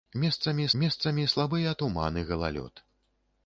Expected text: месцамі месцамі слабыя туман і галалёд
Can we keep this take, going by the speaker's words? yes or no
yes